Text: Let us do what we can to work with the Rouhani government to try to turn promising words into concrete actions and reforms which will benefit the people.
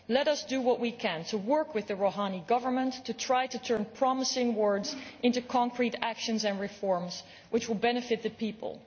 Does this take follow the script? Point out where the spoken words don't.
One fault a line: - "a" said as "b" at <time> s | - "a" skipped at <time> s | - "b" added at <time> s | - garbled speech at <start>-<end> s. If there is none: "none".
none